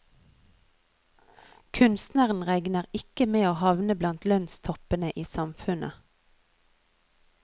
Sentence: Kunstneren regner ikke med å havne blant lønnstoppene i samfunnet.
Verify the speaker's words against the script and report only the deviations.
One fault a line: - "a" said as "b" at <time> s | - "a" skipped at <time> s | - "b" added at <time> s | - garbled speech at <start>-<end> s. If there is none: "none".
none